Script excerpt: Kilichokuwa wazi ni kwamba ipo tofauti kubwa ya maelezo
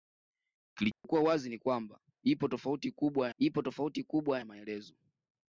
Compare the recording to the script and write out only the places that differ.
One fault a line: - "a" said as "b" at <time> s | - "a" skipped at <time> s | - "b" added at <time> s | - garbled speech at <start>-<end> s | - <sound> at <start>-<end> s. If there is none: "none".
- dropout at 0.9-1.0 s
- "ipo tofauti kubwa" added at 3.4 s